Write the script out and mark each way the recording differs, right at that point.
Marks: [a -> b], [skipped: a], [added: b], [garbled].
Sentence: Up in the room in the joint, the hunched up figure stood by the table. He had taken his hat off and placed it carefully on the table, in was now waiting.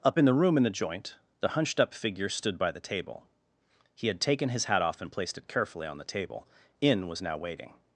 Up in the room in the joint, the hunched up figure stood by the table. He had taken his hat off and placed it carefully on the table, in was now waiting.